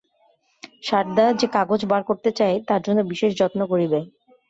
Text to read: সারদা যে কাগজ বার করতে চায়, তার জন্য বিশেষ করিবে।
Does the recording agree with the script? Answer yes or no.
no